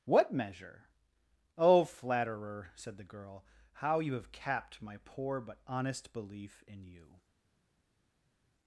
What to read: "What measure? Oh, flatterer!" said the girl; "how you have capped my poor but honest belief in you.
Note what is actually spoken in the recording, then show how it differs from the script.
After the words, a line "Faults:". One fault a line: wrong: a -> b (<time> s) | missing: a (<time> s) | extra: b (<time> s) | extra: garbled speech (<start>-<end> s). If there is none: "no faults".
"What measure? Oh, flatterer!" said the girl; "how you have capped my poor but honest belief in you.
Faults:
no faults